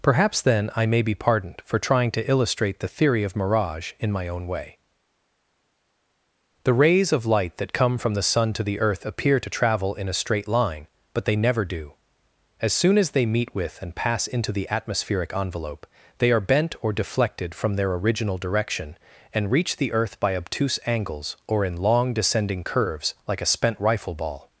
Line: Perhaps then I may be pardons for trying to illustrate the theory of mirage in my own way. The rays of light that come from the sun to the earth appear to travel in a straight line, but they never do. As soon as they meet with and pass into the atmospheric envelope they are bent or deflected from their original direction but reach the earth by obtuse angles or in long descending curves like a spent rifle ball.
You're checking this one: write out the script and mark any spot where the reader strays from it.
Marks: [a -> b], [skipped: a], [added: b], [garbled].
Perhaps then I may be [pardons -> pardoned] for trying to illustrate the theory of mirage in my own way. The rays of light that come from the sun to the earth appear to travel in a straight line, but they never do. As soon as they meet with and pass into the atmospheric envelope they are bent or deflected from their original direction [but -> and] reach the earth by obtuse angles or in long descending curves like a spent rifle ball.